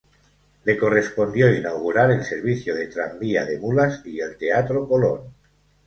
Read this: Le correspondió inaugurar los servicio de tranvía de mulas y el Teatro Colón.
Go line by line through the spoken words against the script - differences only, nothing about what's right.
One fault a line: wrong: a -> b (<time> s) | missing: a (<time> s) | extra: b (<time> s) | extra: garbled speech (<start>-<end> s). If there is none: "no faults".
wrong: los -> el (2.1 s)